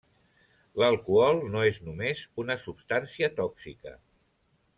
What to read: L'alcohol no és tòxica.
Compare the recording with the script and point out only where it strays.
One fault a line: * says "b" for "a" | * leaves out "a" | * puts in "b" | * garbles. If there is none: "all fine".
* puts in "només una substància"